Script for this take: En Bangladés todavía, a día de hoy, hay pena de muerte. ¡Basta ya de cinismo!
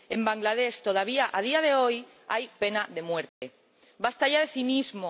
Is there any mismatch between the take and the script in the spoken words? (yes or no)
no